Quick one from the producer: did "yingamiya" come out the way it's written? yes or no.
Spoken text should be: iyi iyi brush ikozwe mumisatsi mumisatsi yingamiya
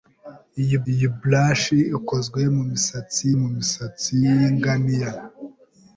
yes